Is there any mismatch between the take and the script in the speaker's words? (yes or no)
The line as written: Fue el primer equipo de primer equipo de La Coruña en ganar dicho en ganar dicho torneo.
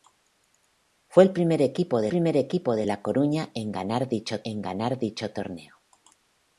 no